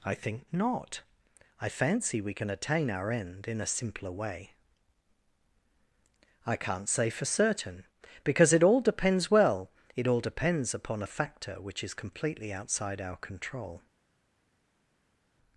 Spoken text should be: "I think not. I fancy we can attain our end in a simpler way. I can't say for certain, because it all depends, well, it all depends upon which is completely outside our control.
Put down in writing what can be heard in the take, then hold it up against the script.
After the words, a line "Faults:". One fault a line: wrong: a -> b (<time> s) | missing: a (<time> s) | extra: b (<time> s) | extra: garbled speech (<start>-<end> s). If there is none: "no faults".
"I think not. I fancy we can attain our end in a simpler way. I can't say for certain, because it all depends, well, it all depends upon a factor which is completely outside our control.
Faults:
extra: a factor (11.0 s)